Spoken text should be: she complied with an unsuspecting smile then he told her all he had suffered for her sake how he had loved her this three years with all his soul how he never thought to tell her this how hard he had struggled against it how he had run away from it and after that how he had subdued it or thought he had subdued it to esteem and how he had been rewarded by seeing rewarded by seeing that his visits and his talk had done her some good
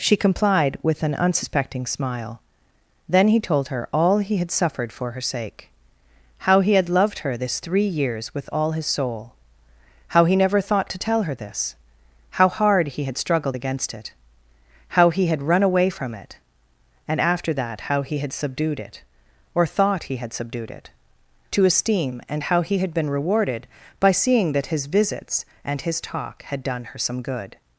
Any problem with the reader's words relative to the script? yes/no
yes